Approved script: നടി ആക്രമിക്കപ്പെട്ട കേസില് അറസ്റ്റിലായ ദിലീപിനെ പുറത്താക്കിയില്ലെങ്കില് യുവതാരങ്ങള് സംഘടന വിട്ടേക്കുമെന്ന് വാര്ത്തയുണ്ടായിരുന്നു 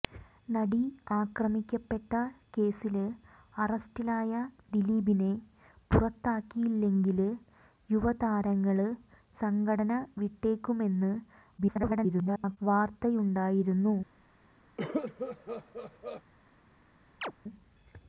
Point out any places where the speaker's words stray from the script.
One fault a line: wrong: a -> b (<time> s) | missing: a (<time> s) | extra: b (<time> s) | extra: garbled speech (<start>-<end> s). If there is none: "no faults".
extra: garbled speech (11.6-12.6 s)